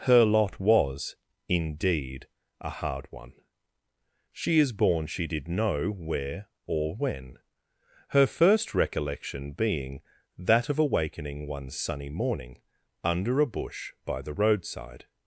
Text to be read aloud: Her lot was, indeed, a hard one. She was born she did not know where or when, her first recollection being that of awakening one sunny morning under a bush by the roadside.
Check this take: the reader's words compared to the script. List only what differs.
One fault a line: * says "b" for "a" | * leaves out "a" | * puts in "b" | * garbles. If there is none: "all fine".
* says "is" for "was"
* leaves out "not"